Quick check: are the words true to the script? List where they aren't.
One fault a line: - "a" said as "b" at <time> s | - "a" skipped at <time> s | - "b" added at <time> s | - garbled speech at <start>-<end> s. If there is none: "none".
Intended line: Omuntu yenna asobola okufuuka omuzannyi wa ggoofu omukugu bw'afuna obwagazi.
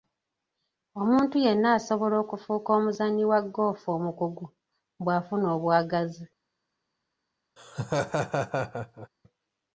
none